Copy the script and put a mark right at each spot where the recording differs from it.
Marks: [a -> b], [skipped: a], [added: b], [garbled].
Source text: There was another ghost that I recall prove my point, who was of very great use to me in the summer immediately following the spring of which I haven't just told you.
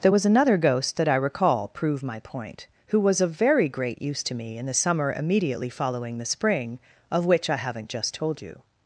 There was another ghost that I recall prove my point, who was of very great use to me in the summer immediately following the spring of which I haven't just told you.